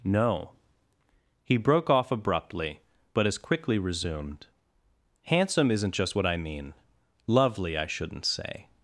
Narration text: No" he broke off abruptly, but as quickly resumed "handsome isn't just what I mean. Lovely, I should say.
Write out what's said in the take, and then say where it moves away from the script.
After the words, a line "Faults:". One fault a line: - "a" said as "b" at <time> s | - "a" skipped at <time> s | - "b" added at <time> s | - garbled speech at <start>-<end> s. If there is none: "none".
No" he broke off abruptly, but as quickly resumed "handsome isn't just what I mean. Lovely, I shouldn't say.
Faults:
- "should" said as "shouldn't" at 7.9 s